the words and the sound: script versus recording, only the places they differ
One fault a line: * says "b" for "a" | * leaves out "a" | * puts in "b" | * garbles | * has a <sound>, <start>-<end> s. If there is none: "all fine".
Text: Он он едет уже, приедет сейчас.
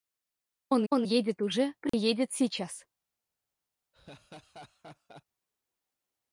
* has a dropout, 1.9-1.9 s
* has a laugh, 3.9-5.2 s